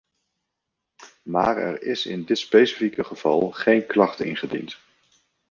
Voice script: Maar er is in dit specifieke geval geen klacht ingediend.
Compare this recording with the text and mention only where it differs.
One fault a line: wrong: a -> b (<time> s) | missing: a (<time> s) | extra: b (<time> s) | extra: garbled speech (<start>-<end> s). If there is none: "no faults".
no faults